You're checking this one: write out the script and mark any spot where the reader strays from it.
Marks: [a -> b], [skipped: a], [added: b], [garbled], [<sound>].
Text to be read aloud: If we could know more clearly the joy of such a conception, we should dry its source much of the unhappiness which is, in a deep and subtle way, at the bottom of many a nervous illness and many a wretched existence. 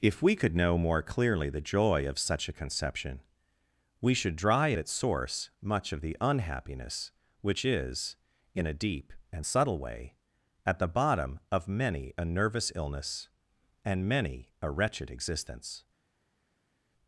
If we could know more clearly the joy of such a conception, we should dry its source much of the unhappiness which is, in a deep and subtle way, at the bottom of many a nervous illness and many a wretched existence.